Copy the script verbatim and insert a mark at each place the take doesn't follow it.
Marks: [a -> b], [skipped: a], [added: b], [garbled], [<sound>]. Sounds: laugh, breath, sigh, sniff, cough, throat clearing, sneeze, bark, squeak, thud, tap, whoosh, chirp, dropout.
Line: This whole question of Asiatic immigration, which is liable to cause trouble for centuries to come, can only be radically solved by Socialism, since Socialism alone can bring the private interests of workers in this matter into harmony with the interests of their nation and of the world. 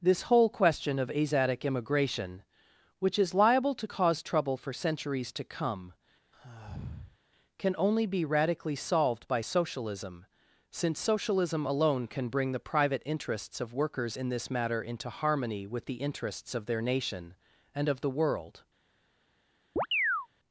This whole question of Asiatic immigration, which is liable to cause trouble for centuries to come, [sigh] can only be radically solved by Socialism, since Socialism alone can bring the private interests of workers in this matter into harmony with the interests of their nation and of the world. [chirp]